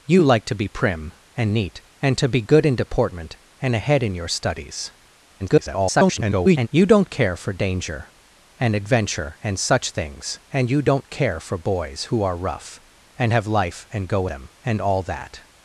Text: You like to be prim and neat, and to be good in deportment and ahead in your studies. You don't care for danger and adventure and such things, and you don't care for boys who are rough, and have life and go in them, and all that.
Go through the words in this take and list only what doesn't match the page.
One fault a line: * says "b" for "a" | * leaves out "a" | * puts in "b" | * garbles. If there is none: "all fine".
* garbles
* leaves out "in"